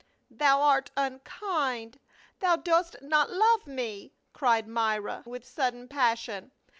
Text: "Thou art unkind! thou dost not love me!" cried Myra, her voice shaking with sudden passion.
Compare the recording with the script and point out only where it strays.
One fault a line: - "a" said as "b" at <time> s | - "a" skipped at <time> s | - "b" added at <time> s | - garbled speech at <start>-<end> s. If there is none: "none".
- "her voice shaking" skipped at 5.2 s